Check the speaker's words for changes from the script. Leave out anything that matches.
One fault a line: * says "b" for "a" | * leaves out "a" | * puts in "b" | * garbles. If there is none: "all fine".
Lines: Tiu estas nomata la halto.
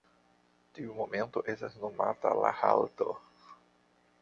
* puts in "momento"